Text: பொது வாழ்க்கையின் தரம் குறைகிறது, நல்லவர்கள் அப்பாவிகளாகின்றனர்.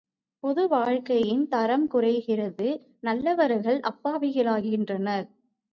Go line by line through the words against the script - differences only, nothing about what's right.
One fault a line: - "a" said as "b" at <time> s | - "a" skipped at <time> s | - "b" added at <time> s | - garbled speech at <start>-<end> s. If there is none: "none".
none